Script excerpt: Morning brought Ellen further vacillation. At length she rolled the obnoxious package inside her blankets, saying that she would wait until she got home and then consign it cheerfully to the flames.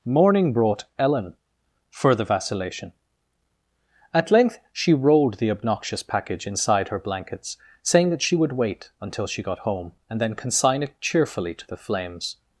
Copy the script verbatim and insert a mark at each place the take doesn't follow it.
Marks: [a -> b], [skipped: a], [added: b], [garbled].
Morning brought Ellen further vacillation. At length she rolled the obnoxious package inside her blankets, saying that she would wait until she got home and then consign it cheerfully to the flames.